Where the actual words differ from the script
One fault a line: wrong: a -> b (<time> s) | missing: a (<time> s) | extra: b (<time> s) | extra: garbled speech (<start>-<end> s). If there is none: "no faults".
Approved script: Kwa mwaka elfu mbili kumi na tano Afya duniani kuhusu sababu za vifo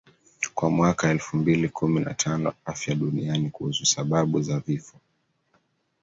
no faults